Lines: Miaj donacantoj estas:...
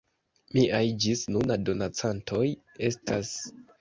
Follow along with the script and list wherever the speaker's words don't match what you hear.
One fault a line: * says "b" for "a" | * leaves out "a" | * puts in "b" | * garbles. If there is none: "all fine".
* puts in "ĝis nuna"